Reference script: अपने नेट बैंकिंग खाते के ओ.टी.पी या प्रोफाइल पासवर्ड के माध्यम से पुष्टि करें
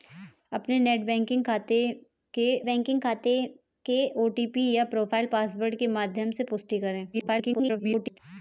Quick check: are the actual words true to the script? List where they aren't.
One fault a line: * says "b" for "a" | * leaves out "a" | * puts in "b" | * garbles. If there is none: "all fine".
* puts in "बैंकिंग खाते के"
* garbles